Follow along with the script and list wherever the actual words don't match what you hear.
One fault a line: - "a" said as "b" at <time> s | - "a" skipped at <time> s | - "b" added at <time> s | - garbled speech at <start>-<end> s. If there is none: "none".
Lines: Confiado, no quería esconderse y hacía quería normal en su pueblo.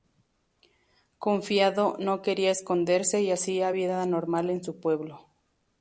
- "quería" said as "vida" at 3.7 s